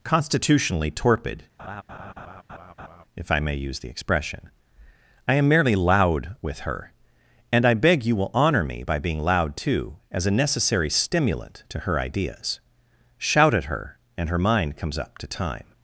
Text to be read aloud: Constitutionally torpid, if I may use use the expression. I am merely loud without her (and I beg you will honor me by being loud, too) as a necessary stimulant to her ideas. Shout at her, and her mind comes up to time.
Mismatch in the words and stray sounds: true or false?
true